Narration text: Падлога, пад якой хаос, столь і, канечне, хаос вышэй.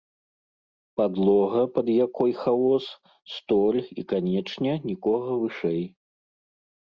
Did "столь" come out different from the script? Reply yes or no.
no